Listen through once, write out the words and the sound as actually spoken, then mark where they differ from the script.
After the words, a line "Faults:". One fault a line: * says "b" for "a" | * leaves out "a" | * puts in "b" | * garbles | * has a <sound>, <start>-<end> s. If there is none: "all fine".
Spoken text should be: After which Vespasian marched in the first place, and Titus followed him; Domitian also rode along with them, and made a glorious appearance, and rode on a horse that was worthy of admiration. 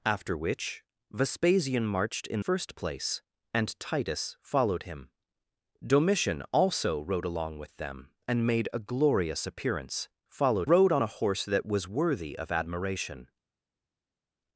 After which Vespasian marched in first place, and Titus followed him; Domitian also rode along with them, and made a glorious appearance, followed rode on a horse that was worthy of admiration.
Faults:
* leaves out "the"
* says "followed" for "and"